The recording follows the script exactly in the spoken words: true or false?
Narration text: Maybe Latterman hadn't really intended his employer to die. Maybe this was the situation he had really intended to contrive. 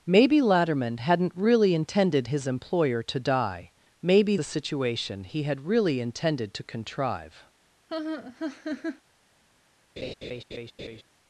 false